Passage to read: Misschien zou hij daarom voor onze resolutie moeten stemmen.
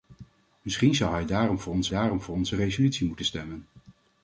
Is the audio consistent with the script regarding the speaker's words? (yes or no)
no